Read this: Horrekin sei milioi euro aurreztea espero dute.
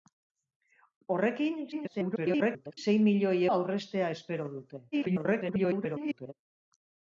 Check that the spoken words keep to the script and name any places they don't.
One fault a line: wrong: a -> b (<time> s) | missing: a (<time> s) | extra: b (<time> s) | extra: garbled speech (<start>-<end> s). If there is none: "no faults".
extra: garbled speech (1.7-2.8 s)
missing: euro (3.4 s)
extra: garbled speech (4.9-6.3 s)